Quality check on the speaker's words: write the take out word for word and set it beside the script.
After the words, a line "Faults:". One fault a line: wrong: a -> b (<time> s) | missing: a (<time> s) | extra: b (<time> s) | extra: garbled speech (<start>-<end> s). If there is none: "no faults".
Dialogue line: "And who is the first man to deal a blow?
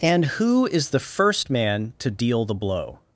"And who is the first man to deal the blow?
Faults:
wrong: a -> the (2.5 s)